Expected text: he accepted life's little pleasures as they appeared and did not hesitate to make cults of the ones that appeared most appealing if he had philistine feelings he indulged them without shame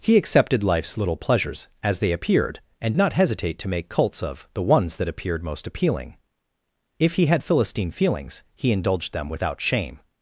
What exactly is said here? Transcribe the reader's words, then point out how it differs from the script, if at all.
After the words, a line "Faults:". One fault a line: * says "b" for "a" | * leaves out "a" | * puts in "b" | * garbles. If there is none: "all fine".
he accepted life's little pleasures as they appeared and not hesitate to make cults of the ones that appeared most appealing if he had philistine feelings he indulged them without shame
Faults:
* leaves out "did"